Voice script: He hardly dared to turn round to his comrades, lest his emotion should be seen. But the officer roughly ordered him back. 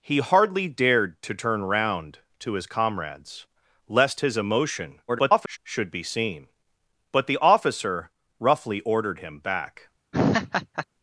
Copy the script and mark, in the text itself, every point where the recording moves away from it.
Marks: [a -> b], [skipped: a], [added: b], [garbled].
He hardly dared to turn round to his comrades, lest his emotion [garbled] should be seen. But the officer roughly ordered him back.